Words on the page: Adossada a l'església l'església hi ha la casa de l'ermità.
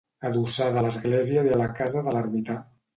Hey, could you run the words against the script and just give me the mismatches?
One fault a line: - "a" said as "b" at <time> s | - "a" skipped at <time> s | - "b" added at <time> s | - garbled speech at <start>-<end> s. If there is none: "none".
- "l'església" skipped at 1.4 s